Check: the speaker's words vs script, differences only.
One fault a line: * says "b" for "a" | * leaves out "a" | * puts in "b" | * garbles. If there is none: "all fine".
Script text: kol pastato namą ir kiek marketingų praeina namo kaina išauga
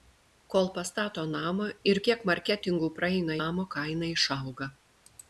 all fine